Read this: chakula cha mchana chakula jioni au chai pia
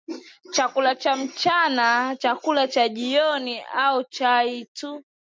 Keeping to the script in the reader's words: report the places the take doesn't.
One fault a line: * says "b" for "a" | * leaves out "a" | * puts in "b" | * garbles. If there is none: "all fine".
* puts in "cha"
* says "tu" for "pia"